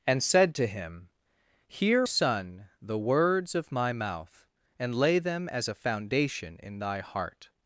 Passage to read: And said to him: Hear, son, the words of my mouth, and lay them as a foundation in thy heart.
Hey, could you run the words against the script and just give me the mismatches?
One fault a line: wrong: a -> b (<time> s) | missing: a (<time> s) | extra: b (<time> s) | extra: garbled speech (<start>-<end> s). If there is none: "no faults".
no faults